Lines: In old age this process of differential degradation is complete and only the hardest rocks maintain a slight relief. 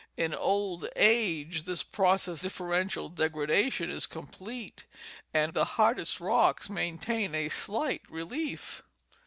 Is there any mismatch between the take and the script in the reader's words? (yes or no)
yes